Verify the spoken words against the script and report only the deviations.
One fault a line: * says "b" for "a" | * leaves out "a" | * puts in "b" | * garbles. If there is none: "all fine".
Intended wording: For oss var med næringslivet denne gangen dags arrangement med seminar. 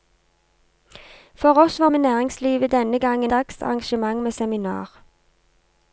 all fine